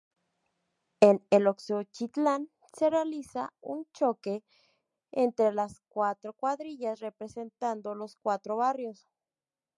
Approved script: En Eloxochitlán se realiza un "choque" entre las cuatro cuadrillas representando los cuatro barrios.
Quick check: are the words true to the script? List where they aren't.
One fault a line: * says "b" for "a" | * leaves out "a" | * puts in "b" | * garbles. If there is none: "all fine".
all fine